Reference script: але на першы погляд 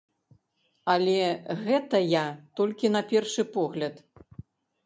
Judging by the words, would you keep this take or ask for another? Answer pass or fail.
fail